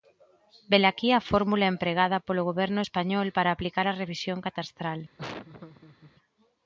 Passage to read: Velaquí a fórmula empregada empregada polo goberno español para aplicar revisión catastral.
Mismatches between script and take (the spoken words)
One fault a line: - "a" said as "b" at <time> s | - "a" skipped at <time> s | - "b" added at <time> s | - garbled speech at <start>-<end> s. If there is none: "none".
- "empregada" skipped at 2.2 s
- "a" added at 3.9 s